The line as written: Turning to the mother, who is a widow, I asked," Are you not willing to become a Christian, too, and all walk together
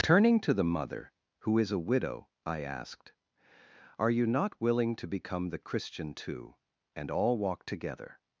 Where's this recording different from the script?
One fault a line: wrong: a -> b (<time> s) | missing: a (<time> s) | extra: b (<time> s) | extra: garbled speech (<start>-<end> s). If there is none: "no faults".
wrong: a -> the (5.5 s)